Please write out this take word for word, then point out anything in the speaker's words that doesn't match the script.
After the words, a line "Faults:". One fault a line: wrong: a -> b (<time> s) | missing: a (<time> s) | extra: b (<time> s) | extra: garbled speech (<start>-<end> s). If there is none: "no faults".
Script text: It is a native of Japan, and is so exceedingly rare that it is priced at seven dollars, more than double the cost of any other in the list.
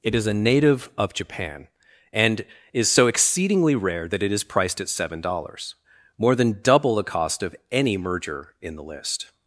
It is a native of Japan, and is so exceedingly rare that it is priced at seven dollars, more than double the cost of any merger in the list.
Faults:
wrong: other -> merger (8.0 s)